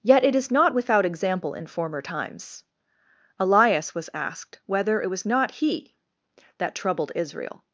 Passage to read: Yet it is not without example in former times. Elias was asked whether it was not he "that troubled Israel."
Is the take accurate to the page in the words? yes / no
yes